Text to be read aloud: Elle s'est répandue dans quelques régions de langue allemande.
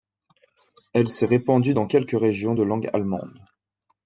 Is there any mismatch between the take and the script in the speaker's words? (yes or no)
no